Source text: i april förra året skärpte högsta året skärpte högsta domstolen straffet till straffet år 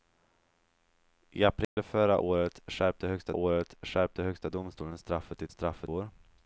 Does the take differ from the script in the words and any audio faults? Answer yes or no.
yes